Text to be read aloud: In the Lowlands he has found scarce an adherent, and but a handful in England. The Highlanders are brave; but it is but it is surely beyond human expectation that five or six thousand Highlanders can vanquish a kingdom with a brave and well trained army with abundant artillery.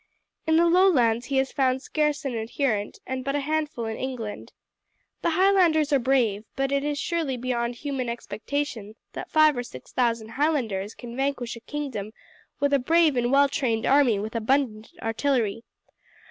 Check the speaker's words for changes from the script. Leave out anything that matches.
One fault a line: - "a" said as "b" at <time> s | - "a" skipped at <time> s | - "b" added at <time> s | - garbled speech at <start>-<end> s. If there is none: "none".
- "but it is" skipped at 7.0 s